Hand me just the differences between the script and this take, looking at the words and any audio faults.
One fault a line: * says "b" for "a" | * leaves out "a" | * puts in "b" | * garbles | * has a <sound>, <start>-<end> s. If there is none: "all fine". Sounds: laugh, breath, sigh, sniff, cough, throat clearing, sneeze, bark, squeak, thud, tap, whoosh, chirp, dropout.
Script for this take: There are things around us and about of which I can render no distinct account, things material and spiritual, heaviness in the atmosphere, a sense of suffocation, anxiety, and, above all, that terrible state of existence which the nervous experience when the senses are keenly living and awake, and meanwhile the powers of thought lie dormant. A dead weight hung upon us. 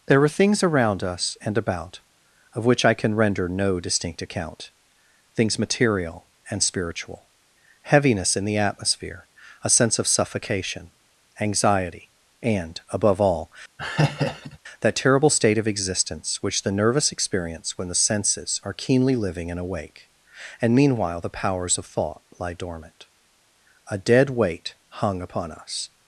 * has a laugh, 13.8-14.6 s